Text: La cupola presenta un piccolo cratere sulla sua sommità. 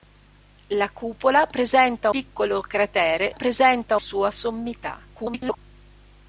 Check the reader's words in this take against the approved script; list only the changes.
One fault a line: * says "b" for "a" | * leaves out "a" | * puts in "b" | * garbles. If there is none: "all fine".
* leaves out "un"
* says "presenta" for "sulla"
* garbles